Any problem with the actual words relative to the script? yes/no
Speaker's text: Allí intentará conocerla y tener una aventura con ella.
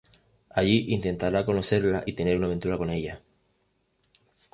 no